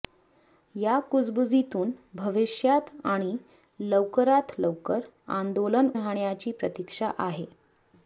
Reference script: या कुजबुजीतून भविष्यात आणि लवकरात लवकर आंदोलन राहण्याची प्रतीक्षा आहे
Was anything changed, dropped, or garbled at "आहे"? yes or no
no